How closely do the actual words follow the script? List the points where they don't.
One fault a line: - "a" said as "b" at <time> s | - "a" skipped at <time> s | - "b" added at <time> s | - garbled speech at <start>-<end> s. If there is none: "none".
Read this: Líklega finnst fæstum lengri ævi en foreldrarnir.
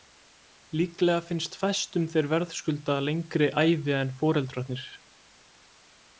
- "þeir verðskulda" added at 2.1 s